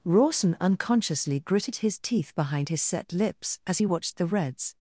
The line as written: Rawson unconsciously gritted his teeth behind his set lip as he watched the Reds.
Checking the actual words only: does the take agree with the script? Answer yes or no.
no